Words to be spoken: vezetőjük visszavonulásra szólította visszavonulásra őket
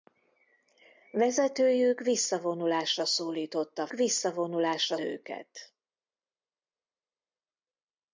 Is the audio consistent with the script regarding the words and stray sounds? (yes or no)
yes